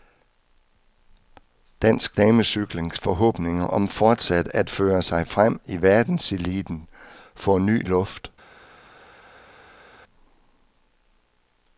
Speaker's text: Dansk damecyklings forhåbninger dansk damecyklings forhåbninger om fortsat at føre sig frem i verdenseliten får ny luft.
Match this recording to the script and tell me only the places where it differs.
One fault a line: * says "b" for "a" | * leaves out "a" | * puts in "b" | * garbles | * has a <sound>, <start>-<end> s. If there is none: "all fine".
* leaves out "dansk damecyklings forhåbninger"